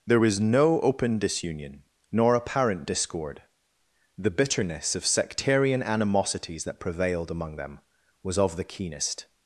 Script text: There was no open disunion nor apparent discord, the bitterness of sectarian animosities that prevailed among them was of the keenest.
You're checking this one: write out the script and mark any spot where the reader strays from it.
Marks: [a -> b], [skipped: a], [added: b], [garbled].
There was no open disunion nor apparent discord, the bitterness of sectarian animosities that prevailed among them was of the keenest.